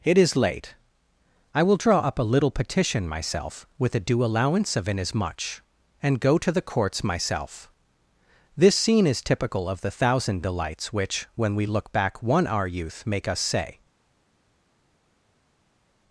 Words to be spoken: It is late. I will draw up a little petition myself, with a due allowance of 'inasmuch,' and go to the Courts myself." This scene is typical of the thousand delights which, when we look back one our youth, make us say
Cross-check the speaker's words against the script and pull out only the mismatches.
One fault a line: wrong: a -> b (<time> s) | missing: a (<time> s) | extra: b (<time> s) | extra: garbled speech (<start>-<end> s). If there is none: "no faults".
no faults